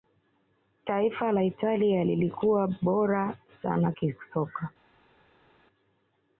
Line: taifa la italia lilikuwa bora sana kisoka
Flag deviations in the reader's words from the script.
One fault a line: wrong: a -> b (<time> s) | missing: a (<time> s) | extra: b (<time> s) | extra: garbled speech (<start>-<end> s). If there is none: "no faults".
no faults